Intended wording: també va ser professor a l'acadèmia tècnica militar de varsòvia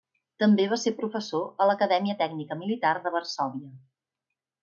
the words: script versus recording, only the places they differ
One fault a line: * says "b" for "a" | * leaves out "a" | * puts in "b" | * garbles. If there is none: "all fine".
all fine